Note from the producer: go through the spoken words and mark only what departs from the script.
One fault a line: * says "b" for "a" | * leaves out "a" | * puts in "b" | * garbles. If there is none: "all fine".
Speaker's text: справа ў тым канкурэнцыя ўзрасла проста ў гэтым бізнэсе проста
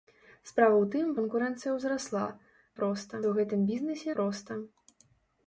all fine